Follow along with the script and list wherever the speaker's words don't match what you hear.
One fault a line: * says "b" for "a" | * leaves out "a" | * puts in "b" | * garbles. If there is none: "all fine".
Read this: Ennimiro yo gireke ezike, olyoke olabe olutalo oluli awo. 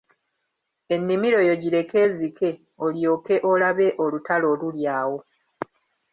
all fine